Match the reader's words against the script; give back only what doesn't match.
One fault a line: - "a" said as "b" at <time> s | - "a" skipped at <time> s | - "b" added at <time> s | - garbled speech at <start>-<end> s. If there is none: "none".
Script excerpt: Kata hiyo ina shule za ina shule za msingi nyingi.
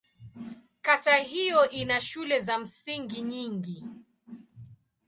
- "ina shule za" skipped at 2.6 s